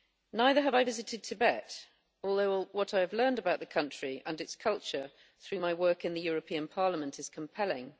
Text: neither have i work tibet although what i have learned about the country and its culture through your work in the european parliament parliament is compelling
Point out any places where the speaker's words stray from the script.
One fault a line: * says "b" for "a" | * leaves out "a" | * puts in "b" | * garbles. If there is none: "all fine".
* says "visited" for "work"
* says "my" for "your"
* leaves out "parliament"